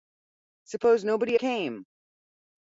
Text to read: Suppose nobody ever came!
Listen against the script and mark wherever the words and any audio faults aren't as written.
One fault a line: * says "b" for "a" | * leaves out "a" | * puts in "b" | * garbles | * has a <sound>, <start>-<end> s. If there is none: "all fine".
* leaves out "ever"